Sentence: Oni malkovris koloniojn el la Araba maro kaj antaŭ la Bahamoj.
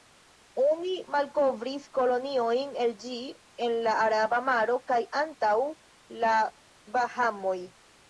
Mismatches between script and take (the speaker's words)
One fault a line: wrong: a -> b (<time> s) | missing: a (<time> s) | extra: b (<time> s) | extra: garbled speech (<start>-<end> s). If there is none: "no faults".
extra: ĝi en (3.0 s)